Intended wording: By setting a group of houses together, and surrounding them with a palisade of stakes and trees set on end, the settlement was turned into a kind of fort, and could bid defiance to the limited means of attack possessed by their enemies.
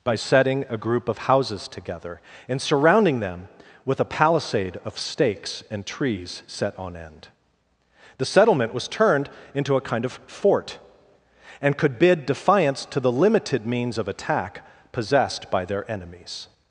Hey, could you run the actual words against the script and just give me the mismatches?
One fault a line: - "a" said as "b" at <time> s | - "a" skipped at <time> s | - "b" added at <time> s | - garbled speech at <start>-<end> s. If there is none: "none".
none